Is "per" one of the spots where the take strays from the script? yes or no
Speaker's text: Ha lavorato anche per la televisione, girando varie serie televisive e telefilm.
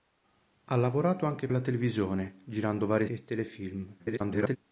yes